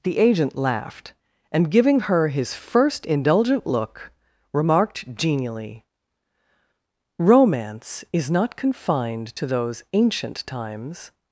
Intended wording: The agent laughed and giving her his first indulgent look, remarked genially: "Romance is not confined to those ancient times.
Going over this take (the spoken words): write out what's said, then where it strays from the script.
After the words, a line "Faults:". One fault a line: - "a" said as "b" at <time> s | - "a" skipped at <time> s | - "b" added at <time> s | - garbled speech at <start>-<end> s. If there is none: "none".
The agent laughed and giving her his first indulgent look, remarked genially: "Romance is not confined to those ancient times.
Faults:
none